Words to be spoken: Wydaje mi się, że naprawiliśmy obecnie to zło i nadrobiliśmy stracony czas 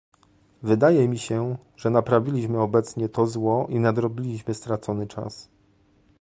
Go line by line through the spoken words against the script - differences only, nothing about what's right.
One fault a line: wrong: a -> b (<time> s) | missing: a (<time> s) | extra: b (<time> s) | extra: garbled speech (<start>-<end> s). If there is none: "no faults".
no faults